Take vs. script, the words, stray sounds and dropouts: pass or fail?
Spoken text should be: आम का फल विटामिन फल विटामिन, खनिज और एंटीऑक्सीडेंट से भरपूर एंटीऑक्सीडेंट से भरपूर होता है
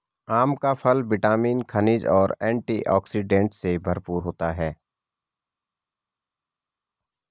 fail